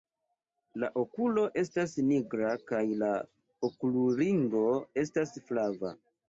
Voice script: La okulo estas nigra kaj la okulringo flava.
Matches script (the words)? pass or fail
fail